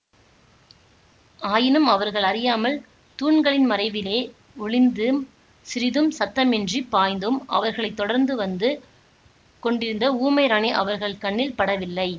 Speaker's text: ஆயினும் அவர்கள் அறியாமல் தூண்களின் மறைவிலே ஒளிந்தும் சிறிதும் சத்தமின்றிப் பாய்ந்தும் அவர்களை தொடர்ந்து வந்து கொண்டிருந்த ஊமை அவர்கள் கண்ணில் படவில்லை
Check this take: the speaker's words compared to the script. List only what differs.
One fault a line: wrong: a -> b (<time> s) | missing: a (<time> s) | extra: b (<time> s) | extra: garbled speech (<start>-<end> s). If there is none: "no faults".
extra: ராணி (10.5 s)